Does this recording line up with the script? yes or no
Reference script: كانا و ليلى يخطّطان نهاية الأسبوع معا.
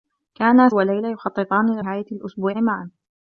yes